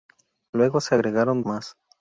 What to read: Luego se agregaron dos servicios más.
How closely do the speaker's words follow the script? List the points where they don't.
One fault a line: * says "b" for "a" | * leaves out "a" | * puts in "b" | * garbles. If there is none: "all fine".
* leaves out "dos servicios"